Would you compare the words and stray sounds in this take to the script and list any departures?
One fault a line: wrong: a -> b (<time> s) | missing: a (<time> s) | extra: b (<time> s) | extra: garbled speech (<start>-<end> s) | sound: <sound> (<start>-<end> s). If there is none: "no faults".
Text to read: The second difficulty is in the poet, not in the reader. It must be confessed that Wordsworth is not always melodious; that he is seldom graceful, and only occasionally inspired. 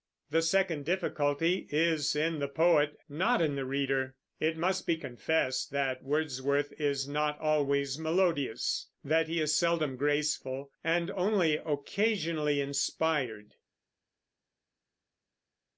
no faults